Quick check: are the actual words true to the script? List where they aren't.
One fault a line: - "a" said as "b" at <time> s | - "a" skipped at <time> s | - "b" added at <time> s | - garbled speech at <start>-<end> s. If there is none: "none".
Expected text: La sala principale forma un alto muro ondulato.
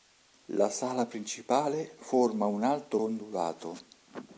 - "muro" skipped at 3.0 s